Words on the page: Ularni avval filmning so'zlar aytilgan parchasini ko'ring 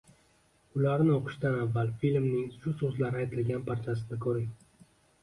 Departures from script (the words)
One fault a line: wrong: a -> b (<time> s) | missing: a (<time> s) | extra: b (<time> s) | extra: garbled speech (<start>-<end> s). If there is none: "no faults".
extra: o'qishdan (1.1 s)
extra: shu (2.6 s)